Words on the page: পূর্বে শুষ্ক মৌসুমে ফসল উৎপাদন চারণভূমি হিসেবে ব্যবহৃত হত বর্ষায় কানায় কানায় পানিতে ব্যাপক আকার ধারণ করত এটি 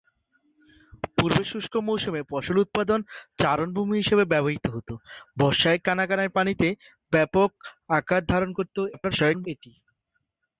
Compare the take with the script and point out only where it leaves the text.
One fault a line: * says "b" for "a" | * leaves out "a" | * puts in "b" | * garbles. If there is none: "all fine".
* garbles